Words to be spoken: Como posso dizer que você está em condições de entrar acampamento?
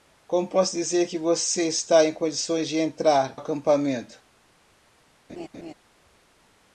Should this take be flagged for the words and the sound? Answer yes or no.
yes